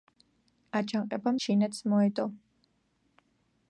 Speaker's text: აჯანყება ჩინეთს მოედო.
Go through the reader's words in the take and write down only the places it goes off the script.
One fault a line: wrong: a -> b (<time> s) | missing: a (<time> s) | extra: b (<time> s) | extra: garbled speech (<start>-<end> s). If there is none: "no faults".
no faults